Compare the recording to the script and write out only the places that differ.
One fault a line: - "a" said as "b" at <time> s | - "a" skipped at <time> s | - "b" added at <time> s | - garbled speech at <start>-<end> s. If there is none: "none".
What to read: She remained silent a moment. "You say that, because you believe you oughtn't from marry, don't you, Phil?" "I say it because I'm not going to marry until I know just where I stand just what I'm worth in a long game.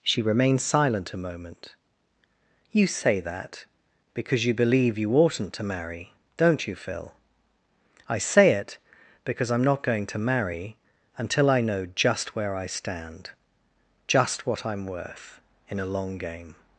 - "from" said as "to" at 5.5 s